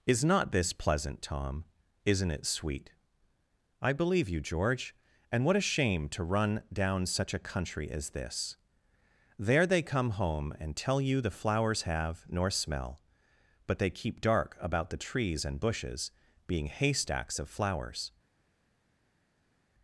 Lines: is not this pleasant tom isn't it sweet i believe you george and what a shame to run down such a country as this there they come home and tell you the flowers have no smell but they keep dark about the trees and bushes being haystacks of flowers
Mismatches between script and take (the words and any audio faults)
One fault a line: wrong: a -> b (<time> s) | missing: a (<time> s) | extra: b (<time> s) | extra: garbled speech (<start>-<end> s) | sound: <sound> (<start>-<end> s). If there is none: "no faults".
wrong: no -> nor (12.3 s)